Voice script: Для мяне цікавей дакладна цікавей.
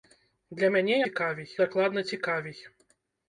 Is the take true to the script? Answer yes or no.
yes